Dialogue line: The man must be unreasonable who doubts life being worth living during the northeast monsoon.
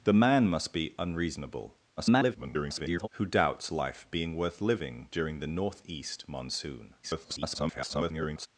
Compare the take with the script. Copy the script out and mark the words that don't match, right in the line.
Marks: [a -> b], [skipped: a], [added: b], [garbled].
The man must be unreasonable [garbled] who doubts life being worth living during the northeast monsoon. [garbled]